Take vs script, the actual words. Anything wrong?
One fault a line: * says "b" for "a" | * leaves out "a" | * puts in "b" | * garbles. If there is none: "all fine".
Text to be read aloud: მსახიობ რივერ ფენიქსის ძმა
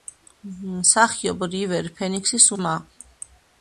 all fine